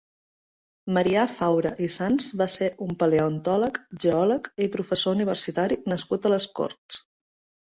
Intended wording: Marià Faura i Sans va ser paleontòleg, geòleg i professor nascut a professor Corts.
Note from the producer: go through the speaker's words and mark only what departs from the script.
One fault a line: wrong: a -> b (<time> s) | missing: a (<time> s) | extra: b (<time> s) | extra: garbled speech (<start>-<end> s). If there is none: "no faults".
extra: un (2.9 s)
extra: universitari (5.2 s)
wrong: professor -> les (6.4 s)